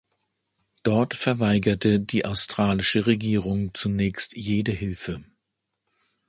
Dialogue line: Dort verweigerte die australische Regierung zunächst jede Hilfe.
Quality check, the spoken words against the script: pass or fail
pass